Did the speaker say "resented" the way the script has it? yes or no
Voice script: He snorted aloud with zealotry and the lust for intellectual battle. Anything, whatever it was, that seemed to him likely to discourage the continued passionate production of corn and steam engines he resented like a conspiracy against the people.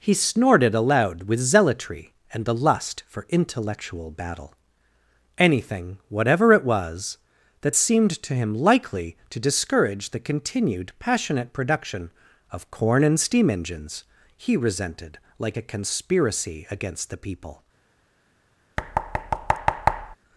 yes